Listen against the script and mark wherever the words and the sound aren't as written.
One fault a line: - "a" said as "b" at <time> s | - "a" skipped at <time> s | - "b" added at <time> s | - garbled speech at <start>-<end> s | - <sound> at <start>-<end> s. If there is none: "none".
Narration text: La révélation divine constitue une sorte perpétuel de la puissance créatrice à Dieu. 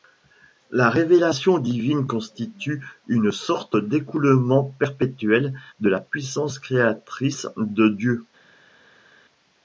- "d'écoulement" added at 3.7 s
- "à" said as "de" at 7.6 s